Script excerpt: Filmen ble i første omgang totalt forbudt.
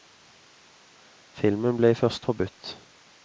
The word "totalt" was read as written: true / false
false